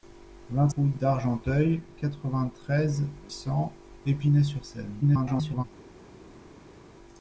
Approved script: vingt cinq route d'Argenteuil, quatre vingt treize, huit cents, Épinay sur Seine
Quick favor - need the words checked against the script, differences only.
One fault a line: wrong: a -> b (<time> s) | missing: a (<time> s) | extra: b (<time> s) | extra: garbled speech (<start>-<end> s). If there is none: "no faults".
missing: cinq (0.7 s)
missing: huit (3.0 s)
extra: garbled speech (5.0-5.6 s)